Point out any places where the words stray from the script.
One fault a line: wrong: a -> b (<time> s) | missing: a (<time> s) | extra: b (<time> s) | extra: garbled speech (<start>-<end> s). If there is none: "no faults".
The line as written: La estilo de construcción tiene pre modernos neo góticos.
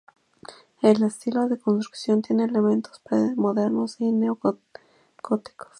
wrong: La -> El (0.8 s)
extra: elementos (2.5 s)
extra: y (4.0 s)